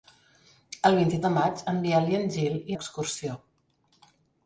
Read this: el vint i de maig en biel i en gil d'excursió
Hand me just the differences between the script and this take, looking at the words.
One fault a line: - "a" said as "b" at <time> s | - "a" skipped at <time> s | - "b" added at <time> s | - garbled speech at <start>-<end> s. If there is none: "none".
none